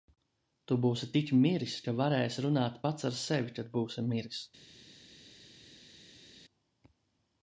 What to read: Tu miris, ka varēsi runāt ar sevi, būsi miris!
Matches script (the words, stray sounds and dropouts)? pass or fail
fail